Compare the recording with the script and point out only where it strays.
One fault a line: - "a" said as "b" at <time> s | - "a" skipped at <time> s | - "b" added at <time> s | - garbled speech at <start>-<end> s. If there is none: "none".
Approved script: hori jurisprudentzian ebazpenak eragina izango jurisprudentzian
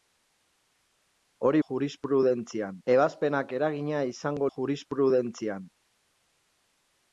none